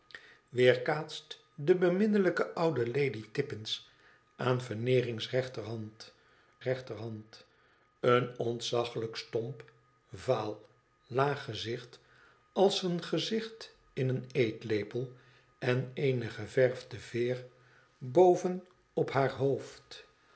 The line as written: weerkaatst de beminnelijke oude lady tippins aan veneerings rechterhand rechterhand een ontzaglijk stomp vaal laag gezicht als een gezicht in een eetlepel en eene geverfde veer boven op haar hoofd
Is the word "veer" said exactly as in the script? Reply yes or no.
yes